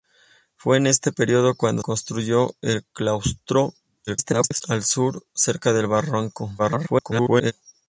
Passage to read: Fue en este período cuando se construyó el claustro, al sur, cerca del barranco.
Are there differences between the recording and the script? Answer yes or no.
yes